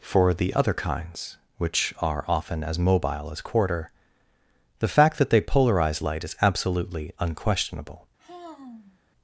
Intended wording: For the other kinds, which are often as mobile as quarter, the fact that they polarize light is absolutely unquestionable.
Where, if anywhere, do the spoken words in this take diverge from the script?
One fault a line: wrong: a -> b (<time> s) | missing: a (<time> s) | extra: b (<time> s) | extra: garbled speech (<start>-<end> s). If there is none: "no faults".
no faults